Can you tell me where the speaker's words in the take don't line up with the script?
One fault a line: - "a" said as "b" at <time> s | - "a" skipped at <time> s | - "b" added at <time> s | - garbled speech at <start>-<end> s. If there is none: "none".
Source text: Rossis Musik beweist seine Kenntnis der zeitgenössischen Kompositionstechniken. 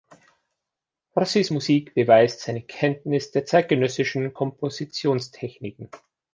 none